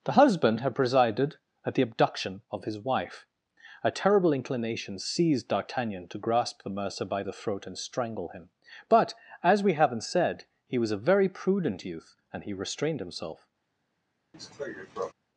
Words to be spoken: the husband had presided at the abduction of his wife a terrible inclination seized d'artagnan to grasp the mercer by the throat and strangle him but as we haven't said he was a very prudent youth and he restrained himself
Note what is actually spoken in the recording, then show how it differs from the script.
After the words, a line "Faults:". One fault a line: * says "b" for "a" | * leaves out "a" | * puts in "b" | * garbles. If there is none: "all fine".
the husband had presided at the abduction of his wife a terrible inclination seized d'artagnan to grasp the mercer by the throat and strangle him but as we haven't said he was a very prudent youth and he restrained himself
Faults:
all fine